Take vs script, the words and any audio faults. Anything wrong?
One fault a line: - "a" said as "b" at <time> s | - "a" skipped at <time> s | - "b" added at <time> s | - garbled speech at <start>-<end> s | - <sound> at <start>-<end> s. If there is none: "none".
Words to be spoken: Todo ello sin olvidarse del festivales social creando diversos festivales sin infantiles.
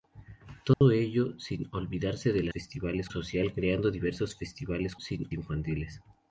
- dropout at 0.7-0.8 s